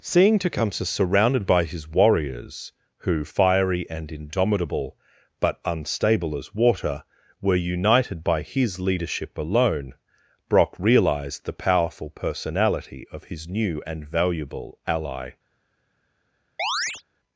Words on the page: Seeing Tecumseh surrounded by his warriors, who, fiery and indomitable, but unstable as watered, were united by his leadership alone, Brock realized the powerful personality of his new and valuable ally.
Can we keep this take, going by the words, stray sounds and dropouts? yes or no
no